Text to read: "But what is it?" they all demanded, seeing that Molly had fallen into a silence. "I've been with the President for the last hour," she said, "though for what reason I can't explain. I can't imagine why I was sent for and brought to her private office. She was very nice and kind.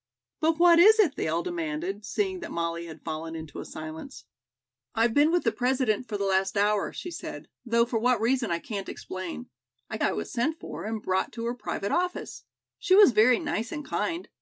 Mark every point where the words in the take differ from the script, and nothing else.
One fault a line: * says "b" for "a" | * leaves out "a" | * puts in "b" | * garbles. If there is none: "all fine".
* leaves out "can't imagine why"